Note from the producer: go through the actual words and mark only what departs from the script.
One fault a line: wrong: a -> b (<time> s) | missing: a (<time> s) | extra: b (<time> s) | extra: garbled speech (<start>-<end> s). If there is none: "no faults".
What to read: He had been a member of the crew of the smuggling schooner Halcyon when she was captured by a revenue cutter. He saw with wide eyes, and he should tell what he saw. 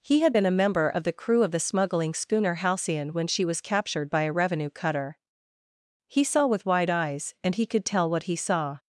wrong: should -> could (7.7 s)